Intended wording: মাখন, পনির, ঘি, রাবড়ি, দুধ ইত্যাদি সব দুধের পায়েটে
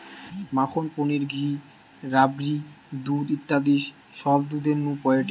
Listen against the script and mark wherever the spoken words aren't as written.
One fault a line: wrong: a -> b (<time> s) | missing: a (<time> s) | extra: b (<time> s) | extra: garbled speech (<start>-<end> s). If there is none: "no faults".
extra: নু (4.8 s)